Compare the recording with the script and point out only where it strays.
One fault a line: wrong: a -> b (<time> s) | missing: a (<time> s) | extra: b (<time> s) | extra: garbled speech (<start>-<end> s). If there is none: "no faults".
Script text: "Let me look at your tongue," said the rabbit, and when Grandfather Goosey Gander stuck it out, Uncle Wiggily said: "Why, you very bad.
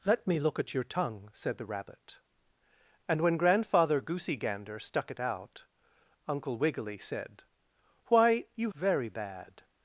no faults